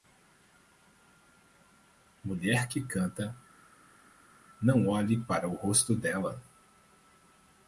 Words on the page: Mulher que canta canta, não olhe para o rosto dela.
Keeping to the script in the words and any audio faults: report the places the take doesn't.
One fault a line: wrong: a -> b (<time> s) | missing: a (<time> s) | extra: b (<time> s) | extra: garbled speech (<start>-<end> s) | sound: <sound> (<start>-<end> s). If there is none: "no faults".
missing: canta (3.4 s)